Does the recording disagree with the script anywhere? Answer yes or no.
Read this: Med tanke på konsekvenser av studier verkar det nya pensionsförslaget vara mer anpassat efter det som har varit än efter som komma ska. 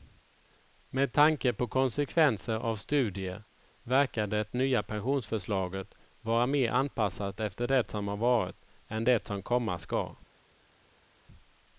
yes